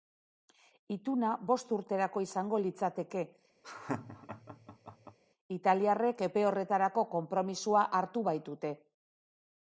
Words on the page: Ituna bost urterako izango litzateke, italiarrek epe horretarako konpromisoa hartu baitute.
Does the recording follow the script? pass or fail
pass